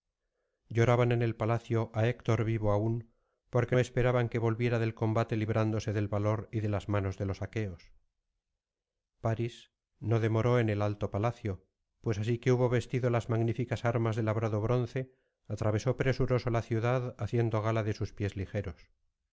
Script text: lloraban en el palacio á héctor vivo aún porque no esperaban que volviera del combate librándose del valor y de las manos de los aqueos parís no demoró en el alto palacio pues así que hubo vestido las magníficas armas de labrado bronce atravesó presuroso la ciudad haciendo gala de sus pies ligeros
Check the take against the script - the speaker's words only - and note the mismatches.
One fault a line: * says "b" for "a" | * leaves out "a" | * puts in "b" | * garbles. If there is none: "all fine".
* leaves out "no"